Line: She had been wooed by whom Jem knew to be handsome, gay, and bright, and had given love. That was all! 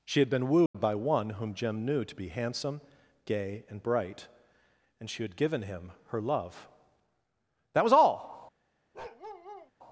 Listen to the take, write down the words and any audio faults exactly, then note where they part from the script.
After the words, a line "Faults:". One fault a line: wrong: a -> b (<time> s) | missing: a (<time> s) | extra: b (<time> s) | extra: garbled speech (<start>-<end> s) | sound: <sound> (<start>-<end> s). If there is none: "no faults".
She had been wooed by one whom Jem knew to be handsome, gay, and bright, and she had given him her love. That was all!
Faults:
sound: dropout (0.7-0.7 s)
extra: one (0.9 s)
extra: she (5.1 s)
extra: him her (5.6 s)
sound: bark (8.9-9.7 s)